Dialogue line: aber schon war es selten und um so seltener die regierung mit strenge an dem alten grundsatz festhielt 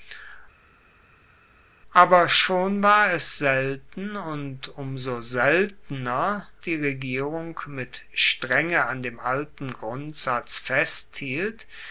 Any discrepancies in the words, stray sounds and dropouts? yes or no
no